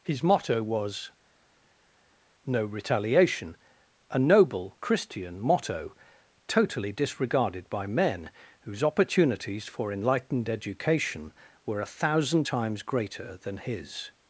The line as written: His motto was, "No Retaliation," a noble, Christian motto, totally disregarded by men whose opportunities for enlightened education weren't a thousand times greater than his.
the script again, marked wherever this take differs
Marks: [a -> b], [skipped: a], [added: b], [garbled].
His motto was, "No Retaliation," a noble, Christian motto, totally disregarded by men whose opportunities for enlightened education [weren't -> were] a thousand times greater than his.